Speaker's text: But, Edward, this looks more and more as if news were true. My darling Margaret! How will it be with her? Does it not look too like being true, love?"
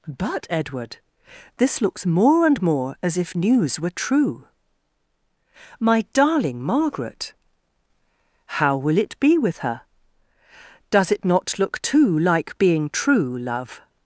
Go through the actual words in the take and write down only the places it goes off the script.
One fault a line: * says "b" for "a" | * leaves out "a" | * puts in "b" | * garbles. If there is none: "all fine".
all fine